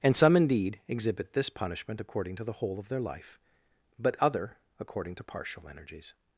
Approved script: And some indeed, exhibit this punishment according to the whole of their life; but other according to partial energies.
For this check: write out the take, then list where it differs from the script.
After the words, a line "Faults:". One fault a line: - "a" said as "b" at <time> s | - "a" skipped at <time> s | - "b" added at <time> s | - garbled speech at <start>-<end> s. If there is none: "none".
And some indeed, exhibit this punishment according to the whole of their life; but other according to partial energies.
Faults:
none